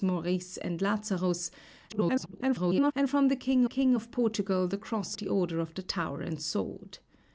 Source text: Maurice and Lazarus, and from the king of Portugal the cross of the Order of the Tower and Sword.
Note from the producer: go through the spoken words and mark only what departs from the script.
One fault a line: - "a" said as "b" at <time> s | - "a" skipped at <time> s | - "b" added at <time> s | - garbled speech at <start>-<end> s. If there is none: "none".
- garbled speech at 1.9-2.9 s
- "king" added at 3.6 s
- "of" skipped at 5.1 s